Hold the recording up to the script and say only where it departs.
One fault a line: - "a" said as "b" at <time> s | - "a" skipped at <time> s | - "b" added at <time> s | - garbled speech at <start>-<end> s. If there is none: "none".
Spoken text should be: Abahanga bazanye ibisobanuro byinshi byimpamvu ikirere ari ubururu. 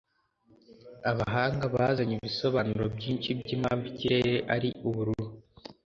none